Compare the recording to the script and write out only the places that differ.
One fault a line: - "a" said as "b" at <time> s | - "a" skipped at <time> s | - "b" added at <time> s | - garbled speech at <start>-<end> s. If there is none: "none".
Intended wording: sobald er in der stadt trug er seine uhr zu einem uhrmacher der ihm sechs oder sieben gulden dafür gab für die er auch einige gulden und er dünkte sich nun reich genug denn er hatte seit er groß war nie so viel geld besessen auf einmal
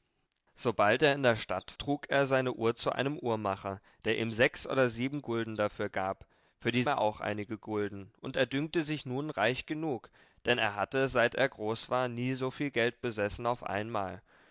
none